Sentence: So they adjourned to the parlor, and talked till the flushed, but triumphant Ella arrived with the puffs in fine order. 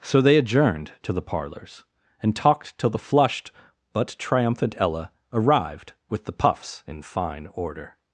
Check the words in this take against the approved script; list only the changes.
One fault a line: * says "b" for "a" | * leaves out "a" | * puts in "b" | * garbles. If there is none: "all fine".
* says "parlors" for "parlor"